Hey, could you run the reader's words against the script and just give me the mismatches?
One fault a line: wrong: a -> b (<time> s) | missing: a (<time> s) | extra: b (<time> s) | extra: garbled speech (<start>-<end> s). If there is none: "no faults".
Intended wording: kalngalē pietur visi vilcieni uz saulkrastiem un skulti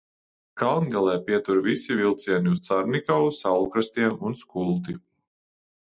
extra: carnikavu (2.7 s)